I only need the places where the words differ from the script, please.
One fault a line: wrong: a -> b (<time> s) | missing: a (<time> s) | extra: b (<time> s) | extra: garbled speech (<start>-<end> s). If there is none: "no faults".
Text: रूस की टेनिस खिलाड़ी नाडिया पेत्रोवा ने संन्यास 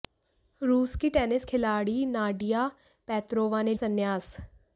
no faults